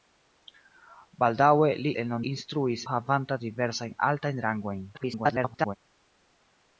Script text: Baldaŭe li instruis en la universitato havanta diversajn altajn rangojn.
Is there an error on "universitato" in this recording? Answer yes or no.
yes